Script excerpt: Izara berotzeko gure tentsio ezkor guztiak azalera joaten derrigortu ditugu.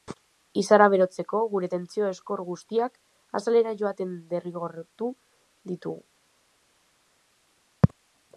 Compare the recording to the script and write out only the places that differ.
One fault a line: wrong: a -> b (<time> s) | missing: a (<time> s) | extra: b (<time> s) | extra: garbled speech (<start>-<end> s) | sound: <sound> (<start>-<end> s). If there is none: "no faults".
no faults